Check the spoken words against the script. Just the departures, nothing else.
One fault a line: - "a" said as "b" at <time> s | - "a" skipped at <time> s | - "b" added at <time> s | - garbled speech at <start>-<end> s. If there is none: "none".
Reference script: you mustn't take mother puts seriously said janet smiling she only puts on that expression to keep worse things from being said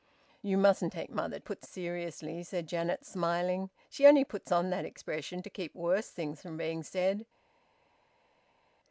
none